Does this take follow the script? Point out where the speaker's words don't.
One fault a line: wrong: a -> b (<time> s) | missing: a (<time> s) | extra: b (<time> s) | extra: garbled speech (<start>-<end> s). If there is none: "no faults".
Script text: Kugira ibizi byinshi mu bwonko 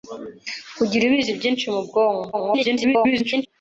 extra: garbled speech (2.3-3.5 s)